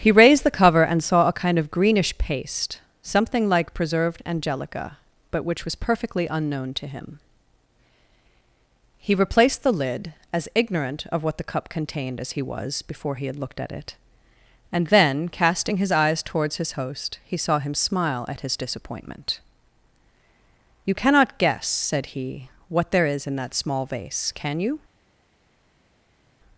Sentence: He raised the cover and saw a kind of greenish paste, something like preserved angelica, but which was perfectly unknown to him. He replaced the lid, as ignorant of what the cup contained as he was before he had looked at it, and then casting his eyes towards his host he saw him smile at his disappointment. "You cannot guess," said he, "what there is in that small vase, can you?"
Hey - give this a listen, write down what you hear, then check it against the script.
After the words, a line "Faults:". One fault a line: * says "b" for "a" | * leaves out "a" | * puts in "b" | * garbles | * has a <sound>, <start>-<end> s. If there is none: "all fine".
He raised the cover and saw a kind of greenish paste, something like preserved angelica, but which was perfectly unknown to him. He replaced the lid, as ignorant of what the cup contained as he was before he had looked at it, and then casting his eyes towards his host he saw him smile at his disappointment. "You cannot guess," said he, "what there is in that small vase, can you?"
Faults:
all fine